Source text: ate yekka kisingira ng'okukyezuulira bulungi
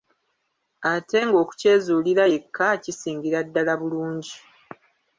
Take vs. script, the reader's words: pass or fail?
fail